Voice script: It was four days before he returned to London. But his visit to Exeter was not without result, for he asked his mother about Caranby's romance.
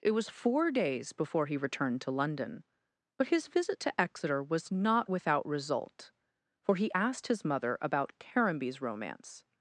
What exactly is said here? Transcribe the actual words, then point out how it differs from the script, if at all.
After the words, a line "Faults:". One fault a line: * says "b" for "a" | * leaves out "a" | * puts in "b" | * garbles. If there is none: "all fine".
It was four days before he returned to London. But his visit to Exeter was not without result, for he asked his mother about Caranby's romance.
Faults:
all fine